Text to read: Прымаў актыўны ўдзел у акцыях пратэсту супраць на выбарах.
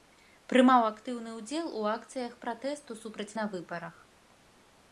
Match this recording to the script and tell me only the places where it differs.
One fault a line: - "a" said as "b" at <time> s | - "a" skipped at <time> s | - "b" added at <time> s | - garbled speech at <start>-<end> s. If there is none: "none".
none